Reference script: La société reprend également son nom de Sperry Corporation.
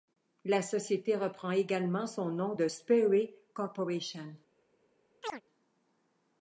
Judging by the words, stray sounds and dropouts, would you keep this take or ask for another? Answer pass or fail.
fail